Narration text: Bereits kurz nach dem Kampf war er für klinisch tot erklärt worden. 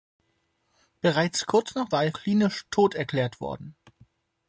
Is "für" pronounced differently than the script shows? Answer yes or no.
yes